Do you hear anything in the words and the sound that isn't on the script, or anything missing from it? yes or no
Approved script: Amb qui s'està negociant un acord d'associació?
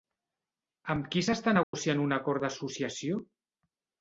yes